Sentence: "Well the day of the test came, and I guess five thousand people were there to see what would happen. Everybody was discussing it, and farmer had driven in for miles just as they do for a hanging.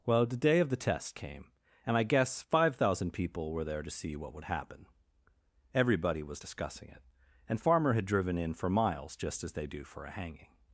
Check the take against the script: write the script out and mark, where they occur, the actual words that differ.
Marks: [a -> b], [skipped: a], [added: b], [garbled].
"Well the day of the test came, and I guess five thousand people were there to see what would happen. Everybody was discussing it, and farmer had driven in for miles just as they do for a hanging.